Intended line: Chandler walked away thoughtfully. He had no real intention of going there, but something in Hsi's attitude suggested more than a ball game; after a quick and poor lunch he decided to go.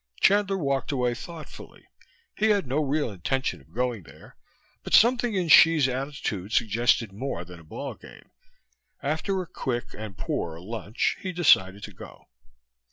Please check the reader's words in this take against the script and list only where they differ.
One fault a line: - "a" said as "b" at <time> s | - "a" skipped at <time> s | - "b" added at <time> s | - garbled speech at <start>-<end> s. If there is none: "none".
none